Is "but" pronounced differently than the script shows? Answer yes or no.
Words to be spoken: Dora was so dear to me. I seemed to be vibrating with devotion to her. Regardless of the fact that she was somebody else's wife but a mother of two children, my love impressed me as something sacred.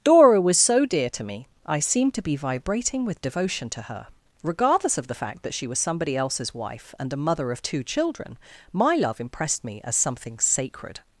yes